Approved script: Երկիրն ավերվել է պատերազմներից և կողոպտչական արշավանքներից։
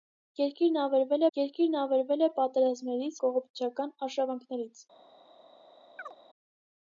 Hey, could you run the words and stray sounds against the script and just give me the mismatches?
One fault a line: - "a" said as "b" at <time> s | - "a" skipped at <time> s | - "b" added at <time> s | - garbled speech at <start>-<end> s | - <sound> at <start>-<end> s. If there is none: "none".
- "երկիրն ավերվել" added at 1.4 s
- "և" skipped at 3.2 s
- chirp at 6.0-6.1 s